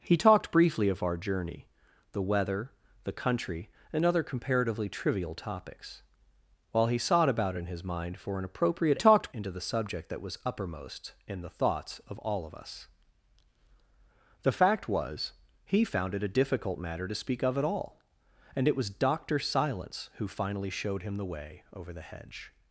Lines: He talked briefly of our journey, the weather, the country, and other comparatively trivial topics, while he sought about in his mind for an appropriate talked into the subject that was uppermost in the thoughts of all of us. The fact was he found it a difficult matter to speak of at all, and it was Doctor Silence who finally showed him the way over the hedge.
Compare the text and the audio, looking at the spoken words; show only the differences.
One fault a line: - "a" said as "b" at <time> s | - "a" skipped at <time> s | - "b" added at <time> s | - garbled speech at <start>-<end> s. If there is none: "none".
none